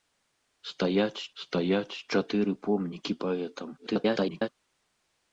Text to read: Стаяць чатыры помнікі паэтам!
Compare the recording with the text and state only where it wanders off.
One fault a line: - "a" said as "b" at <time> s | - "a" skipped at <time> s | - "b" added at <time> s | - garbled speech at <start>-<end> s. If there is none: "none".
- "стаяць" added at 1.4 s
- garbled speech at 3.8-4.5 s